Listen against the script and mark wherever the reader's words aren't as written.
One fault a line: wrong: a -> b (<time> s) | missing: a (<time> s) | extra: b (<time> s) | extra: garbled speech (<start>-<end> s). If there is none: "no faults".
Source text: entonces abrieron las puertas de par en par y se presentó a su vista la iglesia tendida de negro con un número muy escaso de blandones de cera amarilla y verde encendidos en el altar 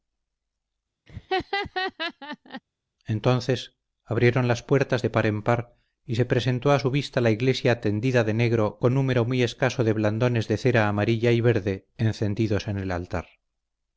missing: un (9.0 s)